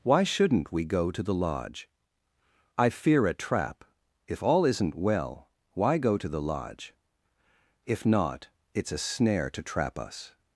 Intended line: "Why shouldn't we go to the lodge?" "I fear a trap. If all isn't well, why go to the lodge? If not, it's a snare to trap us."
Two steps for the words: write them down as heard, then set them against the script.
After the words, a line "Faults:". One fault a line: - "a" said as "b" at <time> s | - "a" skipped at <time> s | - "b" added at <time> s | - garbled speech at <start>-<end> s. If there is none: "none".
"Why shouldn't we go to the lodge?" "I fear a trap. If all isn't well, why go to the lodge? If not, it's a snare to trap us."
Faults:
none